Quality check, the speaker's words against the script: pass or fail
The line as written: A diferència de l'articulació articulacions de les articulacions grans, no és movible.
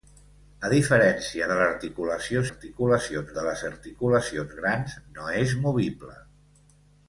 pass